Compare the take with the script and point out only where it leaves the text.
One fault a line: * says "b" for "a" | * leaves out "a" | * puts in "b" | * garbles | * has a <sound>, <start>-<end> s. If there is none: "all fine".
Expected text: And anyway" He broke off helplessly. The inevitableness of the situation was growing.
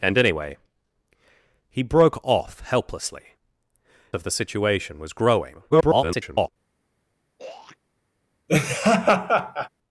* leaves out "The inevitableness"
* garbles
* has a throat clearing, 7.4-7.8 s
* has a laugh, 8.5-9.7 s